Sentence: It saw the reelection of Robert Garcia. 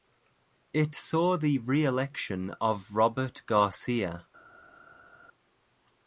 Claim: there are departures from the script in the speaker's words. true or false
false